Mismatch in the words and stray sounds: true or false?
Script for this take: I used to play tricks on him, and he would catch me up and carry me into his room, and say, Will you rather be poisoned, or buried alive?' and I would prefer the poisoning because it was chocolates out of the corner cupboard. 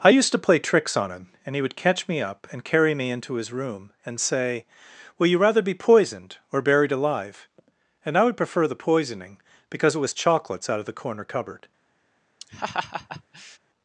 true